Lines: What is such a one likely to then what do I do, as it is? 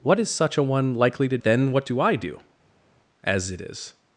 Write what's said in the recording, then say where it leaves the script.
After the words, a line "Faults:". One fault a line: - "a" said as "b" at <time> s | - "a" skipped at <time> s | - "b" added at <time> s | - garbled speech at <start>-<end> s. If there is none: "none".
What is such a one likely to then what do I do, as it is?
Faults:
none